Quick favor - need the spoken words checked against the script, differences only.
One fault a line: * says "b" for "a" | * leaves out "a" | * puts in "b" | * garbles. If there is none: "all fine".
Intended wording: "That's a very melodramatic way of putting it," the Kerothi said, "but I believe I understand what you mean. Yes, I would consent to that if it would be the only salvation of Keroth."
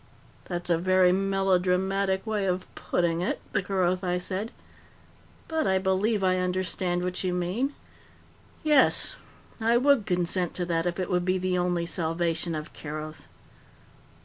all fine